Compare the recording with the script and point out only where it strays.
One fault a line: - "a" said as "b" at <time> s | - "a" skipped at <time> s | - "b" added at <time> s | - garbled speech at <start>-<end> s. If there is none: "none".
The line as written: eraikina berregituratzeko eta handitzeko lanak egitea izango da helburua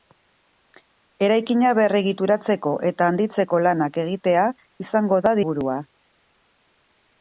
none